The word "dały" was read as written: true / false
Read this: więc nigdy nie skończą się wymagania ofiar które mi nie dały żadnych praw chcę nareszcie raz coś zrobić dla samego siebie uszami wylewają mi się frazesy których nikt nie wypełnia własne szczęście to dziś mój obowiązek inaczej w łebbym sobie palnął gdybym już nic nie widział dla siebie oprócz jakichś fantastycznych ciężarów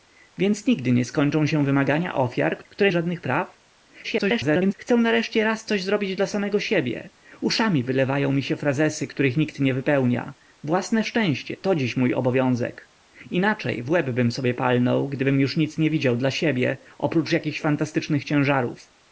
false